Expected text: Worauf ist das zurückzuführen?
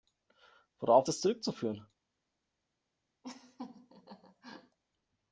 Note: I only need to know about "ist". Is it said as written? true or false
false